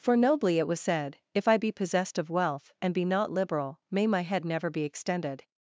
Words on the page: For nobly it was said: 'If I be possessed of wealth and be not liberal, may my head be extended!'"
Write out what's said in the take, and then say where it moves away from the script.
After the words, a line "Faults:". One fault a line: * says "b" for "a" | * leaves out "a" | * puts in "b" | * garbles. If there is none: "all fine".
For nobly it was said: 'If I be possessed of wealth and be not liberal, may my head never be extended!'"
Faults:
* puts in "never"